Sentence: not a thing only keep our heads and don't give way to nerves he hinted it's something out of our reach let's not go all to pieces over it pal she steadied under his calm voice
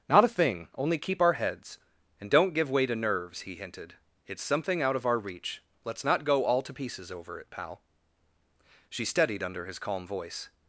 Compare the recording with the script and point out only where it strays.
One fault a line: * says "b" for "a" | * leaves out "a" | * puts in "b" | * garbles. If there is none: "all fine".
all fine